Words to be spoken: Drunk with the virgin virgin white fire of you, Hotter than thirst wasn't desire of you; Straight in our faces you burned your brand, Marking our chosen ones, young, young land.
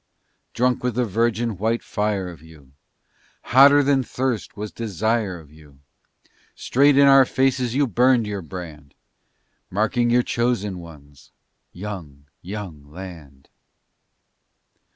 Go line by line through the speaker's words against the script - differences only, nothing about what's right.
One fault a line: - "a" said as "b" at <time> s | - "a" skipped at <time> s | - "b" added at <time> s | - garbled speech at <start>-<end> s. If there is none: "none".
- "virgin" skipped at 1.6 s
- "wasn't" said as "was" at 4.6 s
- "our" said as "your" at 10.1 s